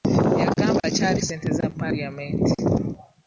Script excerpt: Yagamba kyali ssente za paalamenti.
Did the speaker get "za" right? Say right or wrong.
right